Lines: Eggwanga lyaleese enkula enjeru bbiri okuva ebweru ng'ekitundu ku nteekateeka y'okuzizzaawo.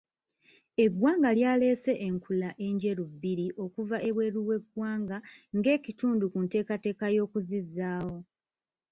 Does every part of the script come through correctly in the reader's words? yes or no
no